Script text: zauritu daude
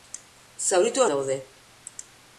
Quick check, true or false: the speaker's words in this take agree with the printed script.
true